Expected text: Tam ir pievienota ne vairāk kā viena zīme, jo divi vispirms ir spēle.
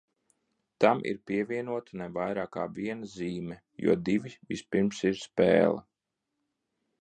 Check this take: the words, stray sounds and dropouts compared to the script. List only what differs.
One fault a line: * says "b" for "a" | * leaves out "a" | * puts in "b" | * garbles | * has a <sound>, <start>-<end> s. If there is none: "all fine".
all fine